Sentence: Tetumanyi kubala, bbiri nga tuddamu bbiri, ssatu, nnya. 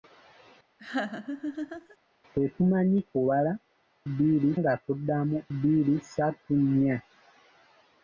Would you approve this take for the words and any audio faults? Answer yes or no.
no